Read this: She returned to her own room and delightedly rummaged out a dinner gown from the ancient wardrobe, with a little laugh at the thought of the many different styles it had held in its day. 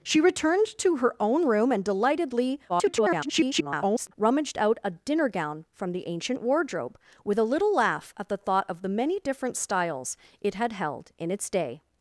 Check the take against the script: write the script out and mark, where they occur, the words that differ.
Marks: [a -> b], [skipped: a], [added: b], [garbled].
She returned to her own room and delightedly [garbled] rummaged out a dinner gown from the ancient wardrobe, with a little laugh at the thought of the many different styles it had held in its day.